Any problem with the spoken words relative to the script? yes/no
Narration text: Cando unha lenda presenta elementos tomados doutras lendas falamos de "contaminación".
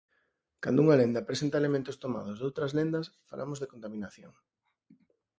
no